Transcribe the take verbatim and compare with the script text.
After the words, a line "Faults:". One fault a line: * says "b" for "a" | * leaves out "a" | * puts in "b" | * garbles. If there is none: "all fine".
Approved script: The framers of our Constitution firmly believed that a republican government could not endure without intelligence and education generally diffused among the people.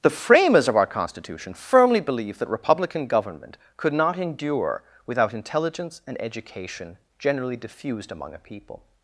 The framers of our Constitution firmly believed that republican government could not endure without intelligence and education generally diffused among a people.
Faults:
* leaves out "a"
* says "a" for "the"